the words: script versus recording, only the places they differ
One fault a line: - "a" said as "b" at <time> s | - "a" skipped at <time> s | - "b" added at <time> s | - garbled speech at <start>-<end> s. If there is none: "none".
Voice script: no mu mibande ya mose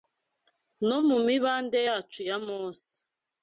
- "yacu" added at 1.9 s